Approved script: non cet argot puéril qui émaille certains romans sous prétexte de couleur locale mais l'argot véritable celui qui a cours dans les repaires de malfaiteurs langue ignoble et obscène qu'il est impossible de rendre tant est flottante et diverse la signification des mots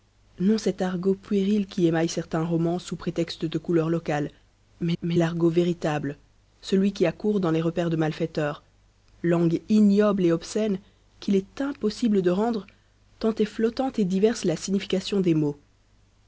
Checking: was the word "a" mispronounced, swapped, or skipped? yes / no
no